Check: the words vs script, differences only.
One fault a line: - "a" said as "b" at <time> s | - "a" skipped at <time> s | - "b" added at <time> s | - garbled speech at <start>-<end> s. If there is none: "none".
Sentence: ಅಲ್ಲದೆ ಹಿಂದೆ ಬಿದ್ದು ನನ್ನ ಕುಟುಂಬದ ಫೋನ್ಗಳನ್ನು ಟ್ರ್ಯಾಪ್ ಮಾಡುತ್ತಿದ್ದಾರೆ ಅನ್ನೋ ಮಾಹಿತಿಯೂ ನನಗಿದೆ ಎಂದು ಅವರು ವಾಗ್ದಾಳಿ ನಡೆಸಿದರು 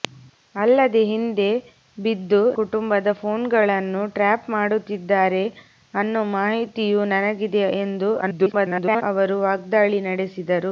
- "ನನ್ನ" skipped at 2.4 s
- garbled speech at 8.2-9.0 s